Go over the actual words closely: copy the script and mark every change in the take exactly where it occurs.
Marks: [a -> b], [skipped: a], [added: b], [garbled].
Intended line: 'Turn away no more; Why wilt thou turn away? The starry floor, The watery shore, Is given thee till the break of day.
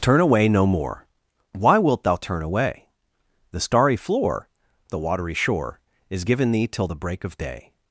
'Turn away no more; Why wilt thou turn away? The starry floor, The watery shore, Is given thee till the break of day.